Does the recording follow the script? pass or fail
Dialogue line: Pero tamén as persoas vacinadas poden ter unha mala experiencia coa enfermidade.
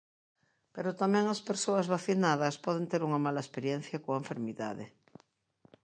pass